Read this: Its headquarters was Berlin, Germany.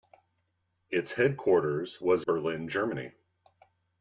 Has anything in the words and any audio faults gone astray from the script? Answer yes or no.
no